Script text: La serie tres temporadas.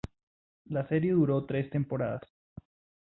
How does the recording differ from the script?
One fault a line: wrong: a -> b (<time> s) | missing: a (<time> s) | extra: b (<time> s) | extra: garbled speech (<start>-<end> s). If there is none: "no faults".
extra: duró (1.1 s)